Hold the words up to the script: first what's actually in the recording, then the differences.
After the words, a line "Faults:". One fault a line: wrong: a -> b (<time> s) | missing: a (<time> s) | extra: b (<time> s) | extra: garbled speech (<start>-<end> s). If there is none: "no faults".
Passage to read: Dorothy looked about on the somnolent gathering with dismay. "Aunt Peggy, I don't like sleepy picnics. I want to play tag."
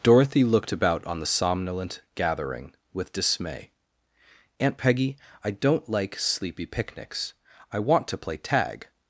Dorothy looked about on the somnolent gathering with dismay. "Aunt Peggy, I don't like sleepy picnics. I want to play tag."
Faults:
no faults